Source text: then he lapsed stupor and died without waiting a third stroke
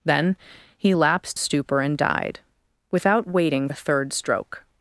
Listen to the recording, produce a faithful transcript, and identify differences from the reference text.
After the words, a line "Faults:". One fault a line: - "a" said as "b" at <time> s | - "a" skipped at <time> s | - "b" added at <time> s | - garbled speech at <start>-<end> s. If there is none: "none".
then he lapsed stupor and died without waiting a third stroke
Faults:
none